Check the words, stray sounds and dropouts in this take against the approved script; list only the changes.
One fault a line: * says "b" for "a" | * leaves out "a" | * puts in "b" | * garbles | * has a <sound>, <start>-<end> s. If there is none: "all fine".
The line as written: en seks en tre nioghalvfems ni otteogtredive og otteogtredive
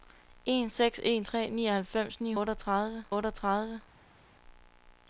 all fine